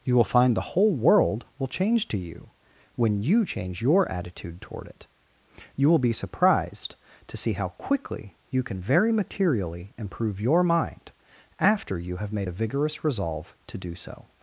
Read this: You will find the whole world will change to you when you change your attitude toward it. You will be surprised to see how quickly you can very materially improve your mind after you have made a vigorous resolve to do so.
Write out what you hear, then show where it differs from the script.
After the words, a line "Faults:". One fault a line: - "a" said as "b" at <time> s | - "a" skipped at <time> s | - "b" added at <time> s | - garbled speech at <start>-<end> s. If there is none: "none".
You will find the whole world will change to you when you change your attitude toward it. You will be surprised to see how quickly you can very materially improve your mind after you have made a vigorous resolve to do so.
Faults:
none